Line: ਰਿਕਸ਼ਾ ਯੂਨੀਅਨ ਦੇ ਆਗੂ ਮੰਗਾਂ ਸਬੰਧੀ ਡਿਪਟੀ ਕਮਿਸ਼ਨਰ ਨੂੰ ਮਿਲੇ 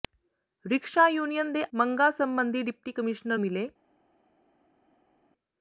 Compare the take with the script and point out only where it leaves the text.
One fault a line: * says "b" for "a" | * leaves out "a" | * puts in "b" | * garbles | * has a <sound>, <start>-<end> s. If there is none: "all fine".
* leaves out "ਆਗੂ"
* leaves out "ਨੂੰ"